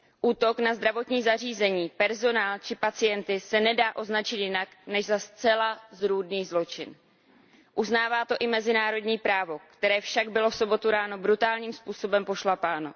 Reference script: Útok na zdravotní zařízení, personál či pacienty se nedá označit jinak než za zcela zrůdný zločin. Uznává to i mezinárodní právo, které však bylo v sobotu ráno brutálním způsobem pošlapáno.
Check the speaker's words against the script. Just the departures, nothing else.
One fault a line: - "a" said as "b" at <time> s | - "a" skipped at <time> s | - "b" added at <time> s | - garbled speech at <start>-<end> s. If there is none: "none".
none